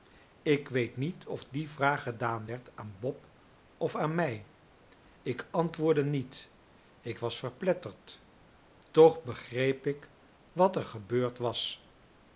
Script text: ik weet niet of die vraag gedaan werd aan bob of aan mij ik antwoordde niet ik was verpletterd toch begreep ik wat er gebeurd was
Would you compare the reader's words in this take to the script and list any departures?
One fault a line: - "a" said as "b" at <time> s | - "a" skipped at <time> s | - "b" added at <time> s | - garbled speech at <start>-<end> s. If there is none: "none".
none